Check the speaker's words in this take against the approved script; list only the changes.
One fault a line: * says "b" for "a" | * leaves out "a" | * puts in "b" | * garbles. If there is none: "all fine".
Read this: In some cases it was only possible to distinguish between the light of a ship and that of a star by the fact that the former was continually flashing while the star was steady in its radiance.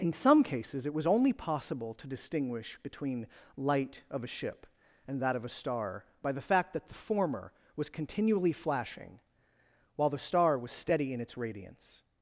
* leaves out "the"